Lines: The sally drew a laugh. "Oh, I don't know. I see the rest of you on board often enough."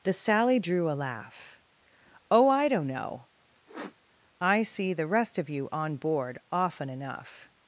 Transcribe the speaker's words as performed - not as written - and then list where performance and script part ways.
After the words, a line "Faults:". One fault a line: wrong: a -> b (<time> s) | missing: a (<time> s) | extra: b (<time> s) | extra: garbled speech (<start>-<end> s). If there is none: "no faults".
The sally drew a laugh. "Oh, I don't know. I see the rest of you on board often enough."
Faults:
no faults